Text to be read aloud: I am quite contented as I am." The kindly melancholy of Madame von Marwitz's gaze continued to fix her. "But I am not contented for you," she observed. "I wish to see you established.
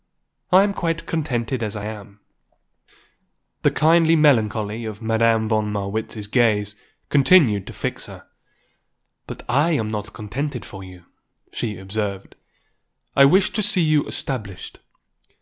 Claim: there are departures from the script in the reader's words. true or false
false